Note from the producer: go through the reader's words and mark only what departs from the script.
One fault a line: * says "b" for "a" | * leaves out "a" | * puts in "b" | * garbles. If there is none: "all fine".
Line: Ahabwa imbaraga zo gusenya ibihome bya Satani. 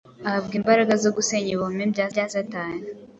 * puts in "bya"